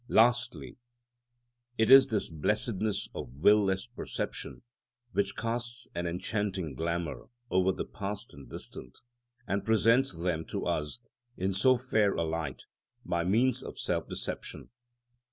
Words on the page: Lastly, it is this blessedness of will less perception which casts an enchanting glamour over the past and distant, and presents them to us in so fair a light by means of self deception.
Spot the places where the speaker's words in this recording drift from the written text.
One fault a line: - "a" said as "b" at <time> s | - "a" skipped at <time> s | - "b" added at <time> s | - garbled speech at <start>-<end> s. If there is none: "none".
none